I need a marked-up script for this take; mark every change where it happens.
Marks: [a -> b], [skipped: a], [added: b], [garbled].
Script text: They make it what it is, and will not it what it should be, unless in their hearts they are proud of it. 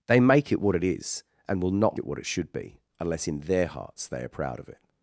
They make it what it is, and will not it what it should be, unless in their hearts they are proud of it.